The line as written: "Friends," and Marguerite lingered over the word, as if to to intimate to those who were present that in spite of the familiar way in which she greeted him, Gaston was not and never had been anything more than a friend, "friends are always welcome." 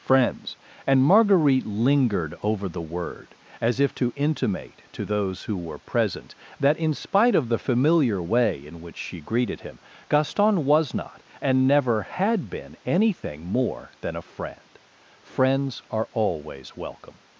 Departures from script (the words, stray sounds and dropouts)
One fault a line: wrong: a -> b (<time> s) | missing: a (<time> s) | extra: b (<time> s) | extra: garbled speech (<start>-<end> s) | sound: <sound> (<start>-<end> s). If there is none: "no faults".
missing: to (4.1 s)